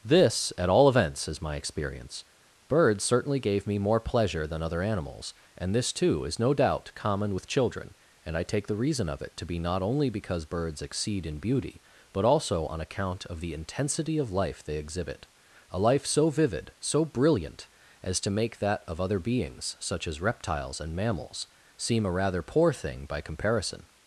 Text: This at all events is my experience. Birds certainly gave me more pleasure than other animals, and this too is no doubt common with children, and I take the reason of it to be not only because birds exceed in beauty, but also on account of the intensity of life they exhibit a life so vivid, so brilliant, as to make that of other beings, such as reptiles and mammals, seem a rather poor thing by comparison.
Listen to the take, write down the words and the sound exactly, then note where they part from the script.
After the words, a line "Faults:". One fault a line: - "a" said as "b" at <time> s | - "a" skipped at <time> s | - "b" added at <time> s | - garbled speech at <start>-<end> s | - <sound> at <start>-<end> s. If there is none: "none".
This at all events is my experience. Birds certainly gave me more pleasure than other animals, and this too is no doubt common with children, and I take the reason of it to be not only because birds exceed in beauty, but also on account of the intensity of life they exhibit a life so vivid, so brilliant, as to make that of other beings, such as reptiles and mammals, seem a rather poor thing by comparison.
Faults:
none